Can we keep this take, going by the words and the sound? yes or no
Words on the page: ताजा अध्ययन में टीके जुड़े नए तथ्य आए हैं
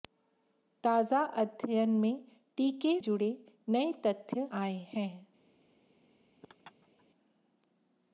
no